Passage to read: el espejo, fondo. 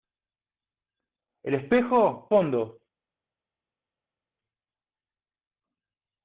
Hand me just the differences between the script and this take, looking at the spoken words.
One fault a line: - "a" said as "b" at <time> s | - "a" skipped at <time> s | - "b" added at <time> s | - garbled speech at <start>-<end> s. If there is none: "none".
none